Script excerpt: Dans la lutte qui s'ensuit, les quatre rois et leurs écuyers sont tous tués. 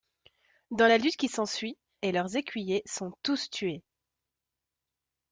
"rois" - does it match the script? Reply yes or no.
no